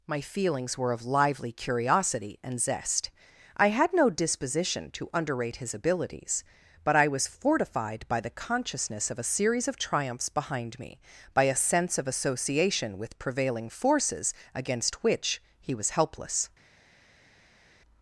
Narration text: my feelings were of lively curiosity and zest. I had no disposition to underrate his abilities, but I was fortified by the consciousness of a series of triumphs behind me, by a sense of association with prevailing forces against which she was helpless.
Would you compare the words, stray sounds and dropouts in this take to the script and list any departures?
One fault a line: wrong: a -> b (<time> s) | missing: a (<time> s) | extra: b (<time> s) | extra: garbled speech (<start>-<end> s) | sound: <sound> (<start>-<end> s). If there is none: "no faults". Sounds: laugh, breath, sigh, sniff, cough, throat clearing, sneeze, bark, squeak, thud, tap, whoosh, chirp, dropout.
wrong: she -> he (15.6 s)